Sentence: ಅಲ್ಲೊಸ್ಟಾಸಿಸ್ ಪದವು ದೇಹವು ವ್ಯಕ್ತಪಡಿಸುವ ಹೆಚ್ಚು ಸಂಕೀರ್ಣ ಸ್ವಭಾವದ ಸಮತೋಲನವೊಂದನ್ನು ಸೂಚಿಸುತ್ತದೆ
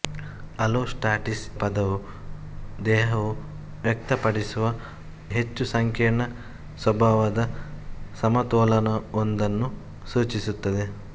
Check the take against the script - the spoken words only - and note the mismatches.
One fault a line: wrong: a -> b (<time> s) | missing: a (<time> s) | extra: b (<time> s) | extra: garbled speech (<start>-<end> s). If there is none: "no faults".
no faults